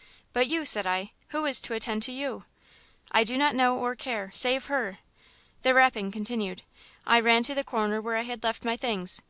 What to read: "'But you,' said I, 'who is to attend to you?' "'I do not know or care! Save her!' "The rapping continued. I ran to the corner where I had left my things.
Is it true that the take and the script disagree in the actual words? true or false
false